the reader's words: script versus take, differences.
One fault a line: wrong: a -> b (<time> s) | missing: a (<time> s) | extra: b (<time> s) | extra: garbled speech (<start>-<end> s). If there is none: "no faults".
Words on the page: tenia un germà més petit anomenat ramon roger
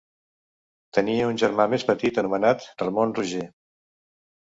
no faults